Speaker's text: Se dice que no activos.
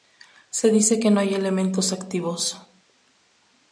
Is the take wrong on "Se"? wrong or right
right